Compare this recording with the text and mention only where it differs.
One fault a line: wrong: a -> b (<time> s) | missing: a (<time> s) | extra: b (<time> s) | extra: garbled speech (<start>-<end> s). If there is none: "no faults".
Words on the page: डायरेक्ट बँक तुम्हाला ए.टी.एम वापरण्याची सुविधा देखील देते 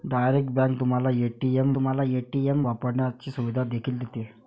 extra: तुम्हाला ए.टी.एम (1.7 s)